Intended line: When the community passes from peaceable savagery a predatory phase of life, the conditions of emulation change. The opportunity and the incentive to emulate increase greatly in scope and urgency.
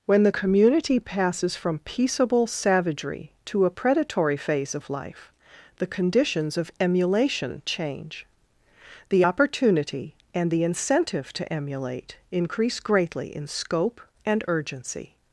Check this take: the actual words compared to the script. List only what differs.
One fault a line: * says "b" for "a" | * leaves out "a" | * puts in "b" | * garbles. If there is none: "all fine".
* puts in "to"